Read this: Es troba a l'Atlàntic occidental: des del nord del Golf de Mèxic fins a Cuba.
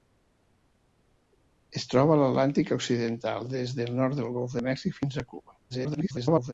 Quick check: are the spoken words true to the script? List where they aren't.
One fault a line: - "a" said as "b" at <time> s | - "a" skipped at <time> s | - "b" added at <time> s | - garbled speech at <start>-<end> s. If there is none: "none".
- garbled speech at 5.7-6.5 s